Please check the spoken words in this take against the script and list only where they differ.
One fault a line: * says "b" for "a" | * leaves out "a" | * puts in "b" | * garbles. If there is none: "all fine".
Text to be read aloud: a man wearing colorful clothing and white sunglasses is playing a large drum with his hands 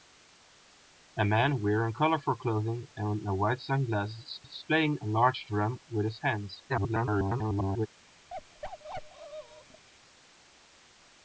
* puts in "is"
* garbles